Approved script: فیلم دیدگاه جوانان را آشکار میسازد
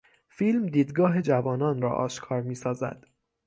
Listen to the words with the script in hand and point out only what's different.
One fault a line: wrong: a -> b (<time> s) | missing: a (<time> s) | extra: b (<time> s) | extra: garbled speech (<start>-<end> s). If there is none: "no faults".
no faults